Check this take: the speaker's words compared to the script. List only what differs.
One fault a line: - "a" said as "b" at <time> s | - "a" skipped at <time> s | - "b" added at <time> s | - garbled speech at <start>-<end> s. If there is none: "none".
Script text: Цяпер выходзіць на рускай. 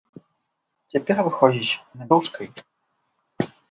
none